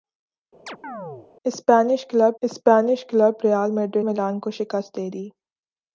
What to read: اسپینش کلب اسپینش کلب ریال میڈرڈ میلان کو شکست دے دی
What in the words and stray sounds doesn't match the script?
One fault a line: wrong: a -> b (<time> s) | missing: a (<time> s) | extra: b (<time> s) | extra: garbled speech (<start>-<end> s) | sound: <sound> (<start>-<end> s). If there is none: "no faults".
sound: chirp (0.7-1.3 s)